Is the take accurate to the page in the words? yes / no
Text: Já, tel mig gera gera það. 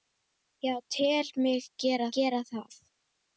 yes